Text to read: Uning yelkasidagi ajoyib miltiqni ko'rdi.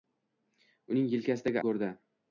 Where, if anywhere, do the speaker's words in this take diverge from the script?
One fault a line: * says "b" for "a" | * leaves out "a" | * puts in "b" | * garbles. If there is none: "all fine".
* leaves out "ajoyib miltiqni"